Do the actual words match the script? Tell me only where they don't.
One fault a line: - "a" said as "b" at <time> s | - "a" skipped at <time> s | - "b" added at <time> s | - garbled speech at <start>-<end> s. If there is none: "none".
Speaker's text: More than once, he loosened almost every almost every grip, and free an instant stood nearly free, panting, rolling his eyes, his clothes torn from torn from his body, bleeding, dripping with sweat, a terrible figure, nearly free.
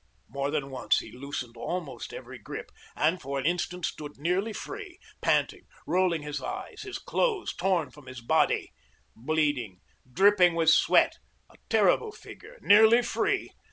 - "almost every" skipped at 2.4 s
- "free" said as "for" at 3.2 s
- "torn from" skipped at 8.1 s